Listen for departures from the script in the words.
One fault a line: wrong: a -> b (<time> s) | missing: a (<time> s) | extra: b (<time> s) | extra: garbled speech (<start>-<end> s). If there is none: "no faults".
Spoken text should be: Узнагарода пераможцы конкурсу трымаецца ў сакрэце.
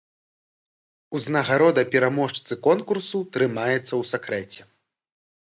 no faults